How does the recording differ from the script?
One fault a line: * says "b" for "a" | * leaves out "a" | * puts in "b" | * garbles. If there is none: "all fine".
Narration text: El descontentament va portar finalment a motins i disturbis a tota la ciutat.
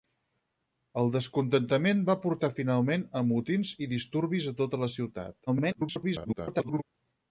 * garbles